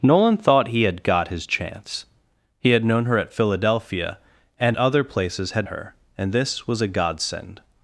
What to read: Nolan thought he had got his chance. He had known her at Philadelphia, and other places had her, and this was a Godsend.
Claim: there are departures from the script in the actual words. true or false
false